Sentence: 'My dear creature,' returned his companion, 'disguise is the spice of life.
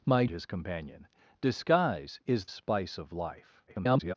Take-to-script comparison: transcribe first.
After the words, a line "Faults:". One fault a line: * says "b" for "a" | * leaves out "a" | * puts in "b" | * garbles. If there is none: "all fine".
'My his companion, 'disguise is spice of life. [garbled]
Faults:
* leaves out "dear creature returned"
* leaves out "the"
* garbles